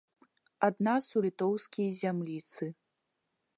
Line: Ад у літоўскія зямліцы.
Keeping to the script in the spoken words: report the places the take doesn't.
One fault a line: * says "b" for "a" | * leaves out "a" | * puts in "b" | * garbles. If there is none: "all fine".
* puts in "нас"